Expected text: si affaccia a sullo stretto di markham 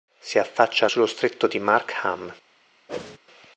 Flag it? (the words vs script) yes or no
no